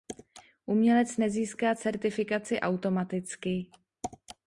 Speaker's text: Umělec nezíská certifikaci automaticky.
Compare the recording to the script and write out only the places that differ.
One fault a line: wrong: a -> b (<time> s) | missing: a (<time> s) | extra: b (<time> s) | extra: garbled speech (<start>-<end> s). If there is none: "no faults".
no faults